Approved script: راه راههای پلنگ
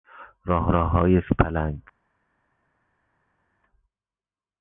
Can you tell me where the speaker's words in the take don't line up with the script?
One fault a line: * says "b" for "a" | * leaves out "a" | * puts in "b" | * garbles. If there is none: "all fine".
all fine